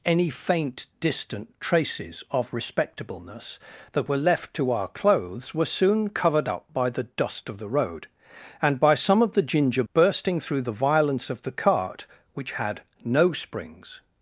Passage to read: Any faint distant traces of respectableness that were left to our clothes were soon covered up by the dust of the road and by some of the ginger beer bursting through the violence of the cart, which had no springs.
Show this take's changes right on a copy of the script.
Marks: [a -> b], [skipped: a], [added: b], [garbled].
Any faint distant traces of respectableness that were left to our clothes were soon covered up by the dust of the road and by some of the ginger [skipped: beer] bursting through the violence of the cart, which had no springs.